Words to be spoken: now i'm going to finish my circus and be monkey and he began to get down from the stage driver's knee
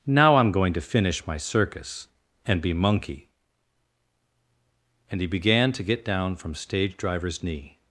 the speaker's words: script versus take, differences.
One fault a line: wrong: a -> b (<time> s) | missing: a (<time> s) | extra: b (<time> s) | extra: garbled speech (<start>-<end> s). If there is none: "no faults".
missing: the (6.5 s)